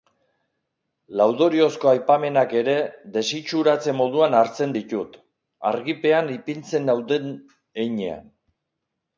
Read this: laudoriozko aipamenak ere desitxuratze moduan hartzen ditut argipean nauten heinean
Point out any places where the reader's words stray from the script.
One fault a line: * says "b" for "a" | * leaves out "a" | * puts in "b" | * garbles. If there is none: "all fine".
* puts in "ipintzen"